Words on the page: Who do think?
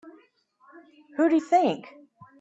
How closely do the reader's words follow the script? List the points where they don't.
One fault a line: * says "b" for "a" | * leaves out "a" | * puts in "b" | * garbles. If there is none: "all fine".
all fine